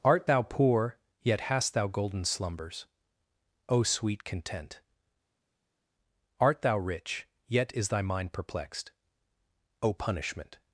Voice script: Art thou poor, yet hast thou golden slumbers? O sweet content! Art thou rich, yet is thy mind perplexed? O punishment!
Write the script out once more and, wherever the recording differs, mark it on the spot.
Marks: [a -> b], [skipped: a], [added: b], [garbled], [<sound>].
Art thou poor, yet hast thou golden slumbers? O sweet content! Art thou rich, yet is thy mind perplexed? O punishment!